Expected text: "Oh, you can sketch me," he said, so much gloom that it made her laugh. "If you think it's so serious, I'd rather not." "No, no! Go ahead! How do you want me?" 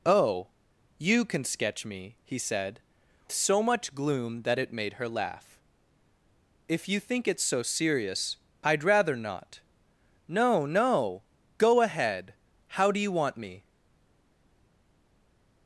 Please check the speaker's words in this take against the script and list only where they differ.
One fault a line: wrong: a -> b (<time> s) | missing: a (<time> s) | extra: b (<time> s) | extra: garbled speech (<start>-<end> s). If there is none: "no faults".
no faults